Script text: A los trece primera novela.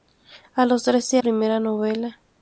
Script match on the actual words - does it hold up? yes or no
yes